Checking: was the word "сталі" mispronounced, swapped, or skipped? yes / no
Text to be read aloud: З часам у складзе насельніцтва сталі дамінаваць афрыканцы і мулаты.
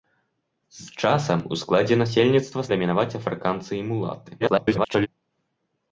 yes